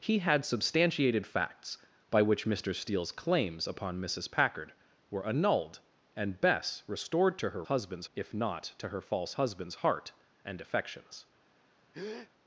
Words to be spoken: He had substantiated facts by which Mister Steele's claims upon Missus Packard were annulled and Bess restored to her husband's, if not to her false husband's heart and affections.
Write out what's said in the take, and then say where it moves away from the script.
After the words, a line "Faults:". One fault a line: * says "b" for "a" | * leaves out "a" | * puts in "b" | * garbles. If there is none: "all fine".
He had substantiated facts by which Mister Steele's claims upon Missus Packard were annulled and Bess restored to her husband's, if not to her false husband's heart and affections.
Faults:
all fine